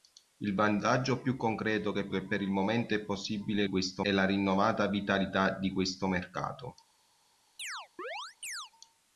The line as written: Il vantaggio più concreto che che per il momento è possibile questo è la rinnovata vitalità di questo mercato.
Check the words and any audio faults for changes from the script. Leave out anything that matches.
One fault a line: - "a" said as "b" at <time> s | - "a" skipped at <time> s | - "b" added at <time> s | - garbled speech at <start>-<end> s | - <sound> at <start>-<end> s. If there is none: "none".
- chirp at 7.6-8.7 s